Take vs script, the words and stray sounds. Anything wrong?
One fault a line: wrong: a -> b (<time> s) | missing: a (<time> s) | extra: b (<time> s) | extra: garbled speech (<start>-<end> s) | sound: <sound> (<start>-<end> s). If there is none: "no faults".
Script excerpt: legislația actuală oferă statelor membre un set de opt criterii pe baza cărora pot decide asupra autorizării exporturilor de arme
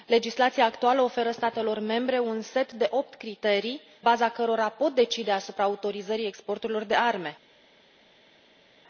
missing: pe (3.8 s)